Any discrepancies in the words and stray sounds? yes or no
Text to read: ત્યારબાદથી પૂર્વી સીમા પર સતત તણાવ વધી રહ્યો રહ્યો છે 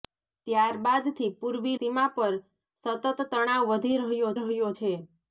no